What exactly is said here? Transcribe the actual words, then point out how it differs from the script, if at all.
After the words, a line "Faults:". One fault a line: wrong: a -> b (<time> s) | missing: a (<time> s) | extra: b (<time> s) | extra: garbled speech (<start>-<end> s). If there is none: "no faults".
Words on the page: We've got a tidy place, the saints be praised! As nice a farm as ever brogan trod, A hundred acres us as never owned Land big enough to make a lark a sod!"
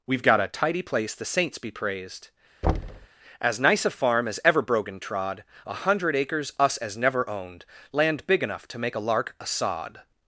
We've got a tidy place, the saints be praised! As nice a farm as ever brogan trod, A hundred acres us as never owned Land big enough to make a lark a sod!"
Faults:
no faults